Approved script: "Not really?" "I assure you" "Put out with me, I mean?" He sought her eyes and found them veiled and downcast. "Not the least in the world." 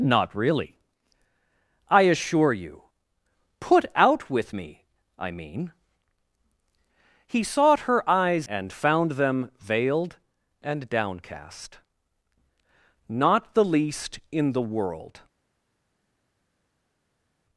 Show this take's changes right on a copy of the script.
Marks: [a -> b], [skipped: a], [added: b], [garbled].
"Not really?" "I assure you" "Put out with me, I mean?" He sought her eyes and found them veiled and downcast. "Not the least in the world."